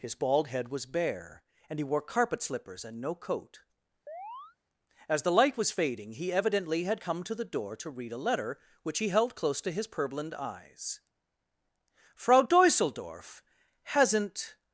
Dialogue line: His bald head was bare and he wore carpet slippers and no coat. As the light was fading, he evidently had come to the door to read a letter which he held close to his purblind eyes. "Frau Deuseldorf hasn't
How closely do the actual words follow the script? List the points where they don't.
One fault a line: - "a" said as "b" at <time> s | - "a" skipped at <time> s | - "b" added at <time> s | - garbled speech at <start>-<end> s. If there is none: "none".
none